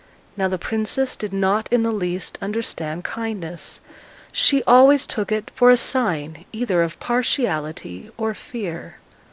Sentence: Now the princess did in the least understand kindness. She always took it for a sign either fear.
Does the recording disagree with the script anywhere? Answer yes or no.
yes